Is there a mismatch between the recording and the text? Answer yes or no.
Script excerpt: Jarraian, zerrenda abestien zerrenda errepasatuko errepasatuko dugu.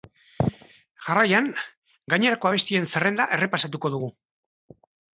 yes